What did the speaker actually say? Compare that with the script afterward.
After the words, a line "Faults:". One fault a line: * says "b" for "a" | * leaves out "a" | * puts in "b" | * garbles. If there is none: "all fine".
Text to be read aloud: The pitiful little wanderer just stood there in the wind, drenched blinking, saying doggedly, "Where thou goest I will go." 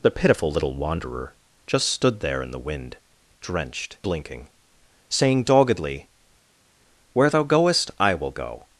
The pitiful little wanderer just stood there in the wind, drenched blinking, saying doggedly, "Where thou goest I will go."
Faults:
all fine